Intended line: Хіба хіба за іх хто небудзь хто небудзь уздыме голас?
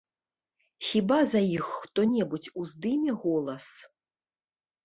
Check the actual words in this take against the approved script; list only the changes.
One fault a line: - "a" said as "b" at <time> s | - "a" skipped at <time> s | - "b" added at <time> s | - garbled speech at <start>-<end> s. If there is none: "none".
- "хіба" skipped at 1.2 s
- "хто небудзь" skipped at 2.5 s